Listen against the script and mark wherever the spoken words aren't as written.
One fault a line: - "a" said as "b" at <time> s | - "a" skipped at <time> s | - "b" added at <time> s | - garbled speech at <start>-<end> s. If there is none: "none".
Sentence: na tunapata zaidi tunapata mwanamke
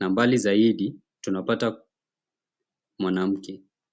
- "tunapata" said as "mbali" at 0.1 s